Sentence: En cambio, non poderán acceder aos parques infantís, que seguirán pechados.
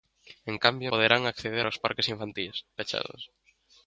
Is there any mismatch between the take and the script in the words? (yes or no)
yes